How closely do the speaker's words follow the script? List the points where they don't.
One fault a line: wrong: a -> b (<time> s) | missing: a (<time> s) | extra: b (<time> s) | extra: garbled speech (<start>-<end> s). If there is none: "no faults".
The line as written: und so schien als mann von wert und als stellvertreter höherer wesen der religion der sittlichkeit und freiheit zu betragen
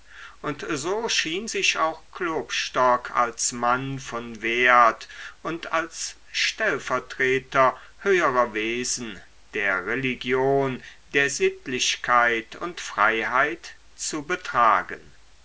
extra: sich auch klopstock (1.4 s)